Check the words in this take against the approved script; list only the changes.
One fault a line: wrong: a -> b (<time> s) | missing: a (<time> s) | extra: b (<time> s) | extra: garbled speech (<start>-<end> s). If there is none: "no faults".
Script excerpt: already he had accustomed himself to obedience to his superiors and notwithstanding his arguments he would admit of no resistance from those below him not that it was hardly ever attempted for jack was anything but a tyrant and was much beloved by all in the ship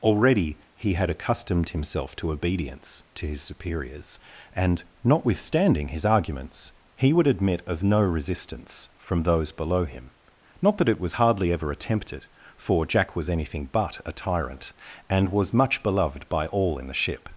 no faults